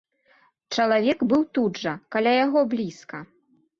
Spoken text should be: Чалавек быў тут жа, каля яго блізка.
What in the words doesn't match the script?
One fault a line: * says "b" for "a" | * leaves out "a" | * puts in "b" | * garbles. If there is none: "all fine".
all fine